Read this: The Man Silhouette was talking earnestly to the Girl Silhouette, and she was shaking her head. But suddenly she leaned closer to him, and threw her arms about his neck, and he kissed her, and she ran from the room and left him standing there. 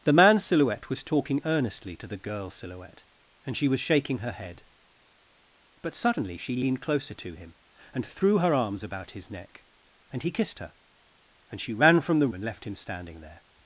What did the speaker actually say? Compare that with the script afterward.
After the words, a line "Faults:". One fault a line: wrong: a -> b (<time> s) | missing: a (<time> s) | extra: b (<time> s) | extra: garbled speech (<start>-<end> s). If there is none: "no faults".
The Man Silhouette was talking earnestly to the Girl Silhouette, and she was shaking her head. But suddenly she leaned closer to him, and threw her arms about his neck, and he kissed her, and she ran from the and left him standing there.
Faults:
missing: room (12.3 s)